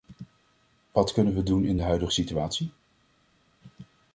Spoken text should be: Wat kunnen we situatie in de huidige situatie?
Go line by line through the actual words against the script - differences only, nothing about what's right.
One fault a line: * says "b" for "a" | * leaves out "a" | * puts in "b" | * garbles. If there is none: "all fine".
* says "doen" for "situatie"